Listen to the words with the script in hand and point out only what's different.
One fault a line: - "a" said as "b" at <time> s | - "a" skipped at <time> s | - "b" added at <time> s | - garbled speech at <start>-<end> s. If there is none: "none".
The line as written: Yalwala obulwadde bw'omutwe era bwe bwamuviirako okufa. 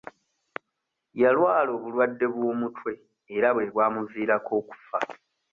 none